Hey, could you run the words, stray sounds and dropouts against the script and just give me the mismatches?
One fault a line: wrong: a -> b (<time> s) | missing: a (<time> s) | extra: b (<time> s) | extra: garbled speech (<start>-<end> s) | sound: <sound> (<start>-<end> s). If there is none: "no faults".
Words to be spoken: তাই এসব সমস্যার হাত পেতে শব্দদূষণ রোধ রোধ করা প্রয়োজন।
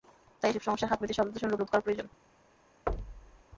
sound: thud (2.9-3.4 s)